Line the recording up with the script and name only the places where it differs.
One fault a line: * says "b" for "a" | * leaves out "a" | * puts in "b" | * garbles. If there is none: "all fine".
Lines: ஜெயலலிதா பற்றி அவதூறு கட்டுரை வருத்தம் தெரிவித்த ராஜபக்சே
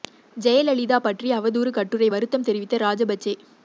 all fine